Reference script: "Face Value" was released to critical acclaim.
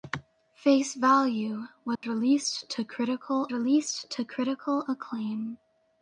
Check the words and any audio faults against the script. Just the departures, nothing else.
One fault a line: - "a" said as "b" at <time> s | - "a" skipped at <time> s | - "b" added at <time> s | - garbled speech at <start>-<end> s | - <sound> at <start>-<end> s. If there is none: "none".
- dropout at 2.0-2.0 s
- "released to critical" added at 3.5 s